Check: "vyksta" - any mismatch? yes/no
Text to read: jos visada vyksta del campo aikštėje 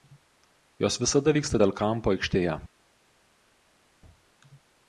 no